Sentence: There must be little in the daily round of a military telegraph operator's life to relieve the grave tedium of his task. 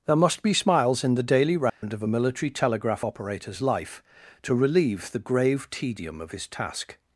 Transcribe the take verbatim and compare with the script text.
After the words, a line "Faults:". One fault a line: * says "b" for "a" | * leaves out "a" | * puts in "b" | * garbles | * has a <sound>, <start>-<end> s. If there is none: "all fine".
There must be smiles in the daily round of a military telegraph operator's life to relieve the grave tedium of his task.
Faults:
* says "smiles" for "little"
* has a dropout, 1.7-1.8 s